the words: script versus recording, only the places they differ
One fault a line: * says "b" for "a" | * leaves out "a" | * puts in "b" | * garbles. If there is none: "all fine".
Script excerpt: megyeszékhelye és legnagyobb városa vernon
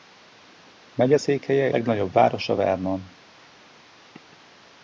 * leaves out "és"